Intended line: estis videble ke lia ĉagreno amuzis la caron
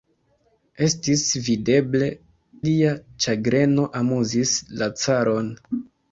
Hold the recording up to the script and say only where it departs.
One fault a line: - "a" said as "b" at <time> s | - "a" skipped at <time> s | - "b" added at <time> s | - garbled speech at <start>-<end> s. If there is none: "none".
- "ke" skipped at 2.1 s